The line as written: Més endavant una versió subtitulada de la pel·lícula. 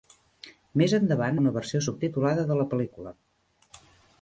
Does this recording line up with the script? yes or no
yes